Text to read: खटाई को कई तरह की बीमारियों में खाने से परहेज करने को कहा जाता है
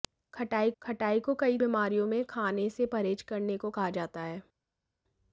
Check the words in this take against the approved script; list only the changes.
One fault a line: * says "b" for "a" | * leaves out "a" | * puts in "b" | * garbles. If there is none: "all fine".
* puts in "खटाई"
* leaves out "तरह की"